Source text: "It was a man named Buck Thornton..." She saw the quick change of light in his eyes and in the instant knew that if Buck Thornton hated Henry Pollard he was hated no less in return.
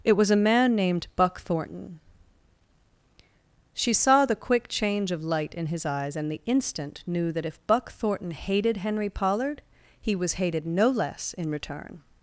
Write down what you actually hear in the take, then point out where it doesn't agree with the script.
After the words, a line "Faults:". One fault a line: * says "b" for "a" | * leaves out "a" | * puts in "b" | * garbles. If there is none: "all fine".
"It was a man named Buck Thornton..." She saw the quick change of light in his eyes and the instant knew that if Buck Thornton hated Henry Pollard he was hated no less in return.
Faults:
* leaves out "in"